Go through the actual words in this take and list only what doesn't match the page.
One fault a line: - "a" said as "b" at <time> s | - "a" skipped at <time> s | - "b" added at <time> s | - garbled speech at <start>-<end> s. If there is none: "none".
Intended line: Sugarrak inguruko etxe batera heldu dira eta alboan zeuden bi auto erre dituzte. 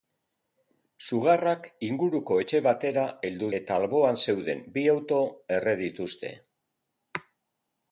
- "dira" skipped at 3.5 s